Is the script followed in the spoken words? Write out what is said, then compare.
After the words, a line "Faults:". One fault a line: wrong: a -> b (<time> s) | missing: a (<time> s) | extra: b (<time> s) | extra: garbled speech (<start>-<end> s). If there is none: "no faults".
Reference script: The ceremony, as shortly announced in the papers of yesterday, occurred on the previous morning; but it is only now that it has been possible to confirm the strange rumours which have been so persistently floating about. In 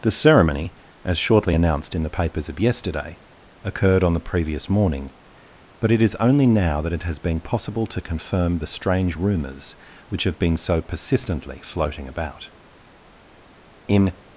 The ceremony, as shortly announced in the papers of yesterday, occurred on the previous morning; but it is only now that it has been possible to confirm the strange rumours which have been so persistently floating about. In
Faults:
no faults